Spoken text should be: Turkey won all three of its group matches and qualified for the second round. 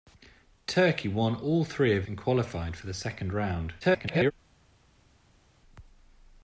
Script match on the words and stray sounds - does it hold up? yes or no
no